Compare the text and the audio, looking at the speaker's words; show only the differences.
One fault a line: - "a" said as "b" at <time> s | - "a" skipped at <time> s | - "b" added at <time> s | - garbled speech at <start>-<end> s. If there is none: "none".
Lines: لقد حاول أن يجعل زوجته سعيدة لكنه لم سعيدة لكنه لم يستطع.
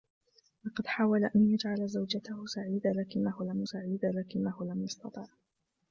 none